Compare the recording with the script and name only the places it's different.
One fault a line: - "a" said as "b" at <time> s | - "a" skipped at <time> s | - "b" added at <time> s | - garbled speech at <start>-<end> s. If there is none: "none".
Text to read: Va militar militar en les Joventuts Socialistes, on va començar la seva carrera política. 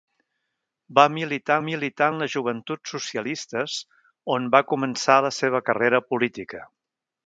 none